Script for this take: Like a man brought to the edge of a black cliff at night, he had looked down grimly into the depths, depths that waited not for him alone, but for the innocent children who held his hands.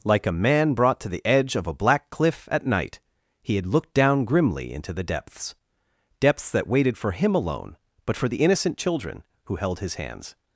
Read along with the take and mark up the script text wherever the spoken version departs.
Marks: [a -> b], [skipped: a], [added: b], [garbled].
Like a man brought to the edge of a black cliff at night, he had looked down grimly into the depths, depths that waited [skipped: not] for him alone, but for the innocent children who held his hands.